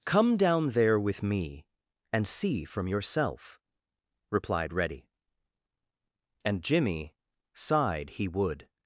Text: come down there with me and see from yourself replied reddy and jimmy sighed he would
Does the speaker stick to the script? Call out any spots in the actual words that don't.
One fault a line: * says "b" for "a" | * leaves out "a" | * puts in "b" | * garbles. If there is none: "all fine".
all fine